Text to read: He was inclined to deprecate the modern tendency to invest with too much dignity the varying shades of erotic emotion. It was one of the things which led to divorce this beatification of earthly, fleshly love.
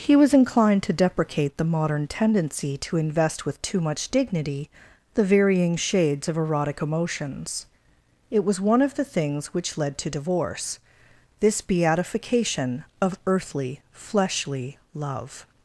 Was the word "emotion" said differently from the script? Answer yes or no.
yes